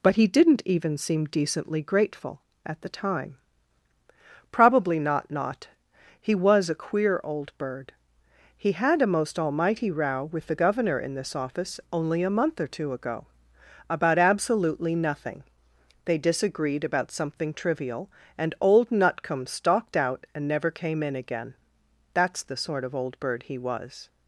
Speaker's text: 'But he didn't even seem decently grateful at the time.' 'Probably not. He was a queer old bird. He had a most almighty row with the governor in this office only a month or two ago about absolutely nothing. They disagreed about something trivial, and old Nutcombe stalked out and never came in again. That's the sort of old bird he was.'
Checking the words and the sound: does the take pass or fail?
fail